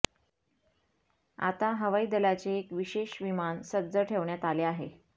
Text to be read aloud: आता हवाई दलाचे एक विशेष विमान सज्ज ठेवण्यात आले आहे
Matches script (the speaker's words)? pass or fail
pass